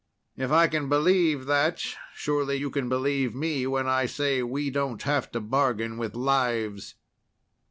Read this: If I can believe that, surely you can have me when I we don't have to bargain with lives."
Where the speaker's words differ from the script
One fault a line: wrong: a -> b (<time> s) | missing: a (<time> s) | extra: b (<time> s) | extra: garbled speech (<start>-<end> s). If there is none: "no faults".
wrong: have -> believe (2.9 s)
extra: say (4.0 s)